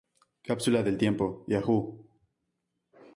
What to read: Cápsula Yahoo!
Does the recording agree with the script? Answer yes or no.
no